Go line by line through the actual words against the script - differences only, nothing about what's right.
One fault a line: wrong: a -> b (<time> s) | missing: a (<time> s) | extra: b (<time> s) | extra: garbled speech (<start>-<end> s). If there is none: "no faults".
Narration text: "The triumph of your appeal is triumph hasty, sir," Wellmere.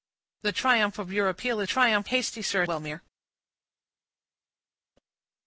no faults